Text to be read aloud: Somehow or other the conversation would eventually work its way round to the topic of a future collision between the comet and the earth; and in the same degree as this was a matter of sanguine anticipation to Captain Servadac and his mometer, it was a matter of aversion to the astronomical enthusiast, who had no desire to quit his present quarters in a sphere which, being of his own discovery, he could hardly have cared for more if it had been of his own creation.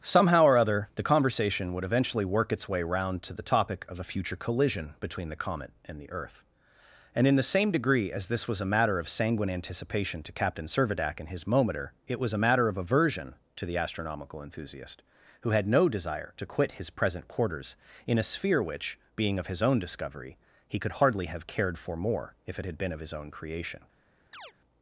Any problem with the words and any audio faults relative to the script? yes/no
yes